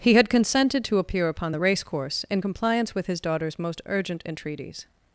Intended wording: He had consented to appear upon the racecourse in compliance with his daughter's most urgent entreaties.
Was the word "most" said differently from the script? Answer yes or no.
no